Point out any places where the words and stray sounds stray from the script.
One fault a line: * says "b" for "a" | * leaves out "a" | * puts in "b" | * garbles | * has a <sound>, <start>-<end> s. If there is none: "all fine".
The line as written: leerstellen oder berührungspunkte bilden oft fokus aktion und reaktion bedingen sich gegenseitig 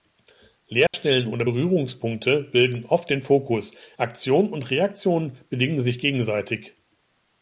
* has a dropout, 0.9-0.9 s
* puts in "den"